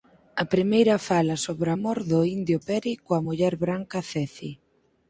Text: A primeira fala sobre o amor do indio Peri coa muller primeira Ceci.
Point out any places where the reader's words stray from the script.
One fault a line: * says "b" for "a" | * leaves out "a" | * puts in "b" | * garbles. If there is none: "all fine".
* says "branca" for "primeira"